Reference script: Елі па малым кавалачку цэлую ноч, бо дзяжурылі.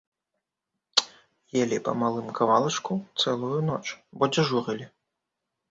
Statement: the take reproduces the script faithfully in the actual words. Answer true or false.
true